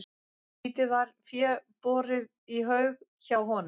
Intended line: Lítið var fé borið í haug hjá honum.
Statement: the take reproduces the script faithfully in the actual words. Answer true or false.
true